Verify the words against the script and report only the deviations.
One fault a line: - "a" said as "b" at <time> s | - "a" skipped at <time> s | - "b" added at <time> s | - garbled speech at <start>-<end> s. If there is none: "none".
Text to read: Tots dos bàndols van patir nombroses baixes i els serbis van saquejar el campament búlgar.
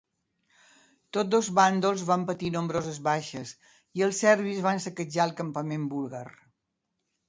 none